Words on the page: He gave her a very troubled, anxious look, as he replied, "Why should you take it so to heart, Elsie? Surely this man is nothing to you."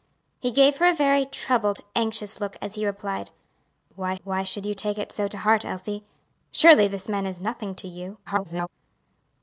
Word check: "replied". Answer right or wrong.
right